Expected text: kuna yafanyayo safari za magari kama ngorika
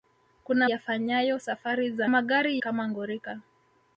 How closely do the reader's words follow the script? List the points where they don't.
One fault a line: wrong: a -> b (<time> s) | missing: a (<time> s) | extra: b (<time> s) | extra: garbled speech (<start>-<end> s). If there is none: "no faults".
no faults